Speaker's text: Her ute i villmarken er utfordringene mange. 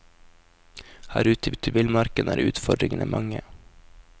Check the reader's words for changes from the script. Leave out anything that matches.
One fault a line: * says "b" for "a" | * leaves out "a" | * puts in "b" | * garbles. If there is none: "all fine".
* puts in "ute"